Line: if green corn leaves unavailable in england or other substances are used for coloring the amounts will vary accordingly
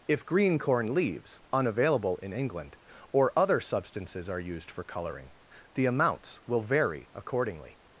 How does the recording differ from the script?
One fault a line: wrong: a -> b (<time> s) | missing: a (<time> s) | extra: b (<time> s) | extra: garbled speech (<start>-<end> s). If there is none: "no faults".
no faults